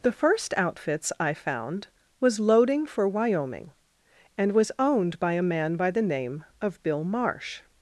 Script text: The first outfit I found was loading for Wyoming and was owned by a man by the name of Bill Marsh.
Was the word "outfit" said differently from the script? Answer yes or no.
yes